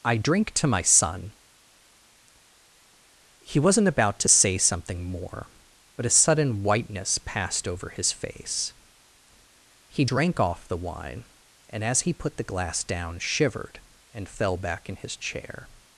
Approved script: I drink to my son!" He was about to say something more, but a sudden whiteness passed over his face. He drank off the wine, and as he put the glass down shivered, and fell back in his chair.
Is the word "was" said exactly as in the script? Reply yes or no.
no